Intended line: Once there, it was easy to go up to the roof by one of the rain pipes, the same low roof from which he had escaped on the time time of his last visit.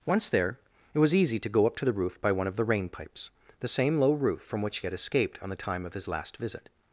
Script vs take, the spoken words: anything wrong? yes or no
yes